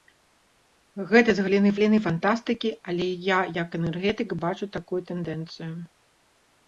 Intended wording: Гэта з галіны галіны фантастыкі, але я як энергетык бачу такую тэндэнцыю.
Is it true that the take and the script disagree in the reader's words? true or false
false